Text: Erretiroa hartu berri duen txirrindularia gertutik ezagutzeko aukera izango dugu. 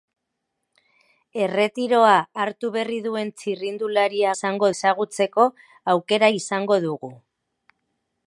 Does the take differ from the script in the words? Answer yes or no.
yes